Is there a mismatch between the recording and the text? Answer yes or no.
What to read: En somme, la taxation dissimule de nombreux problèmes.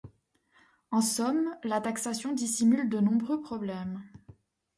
no